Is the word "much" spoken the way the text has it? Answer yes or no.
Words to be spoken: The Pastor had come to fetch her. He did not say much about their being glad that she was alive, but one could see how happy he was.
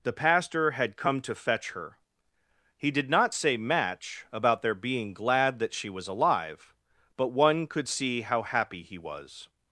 no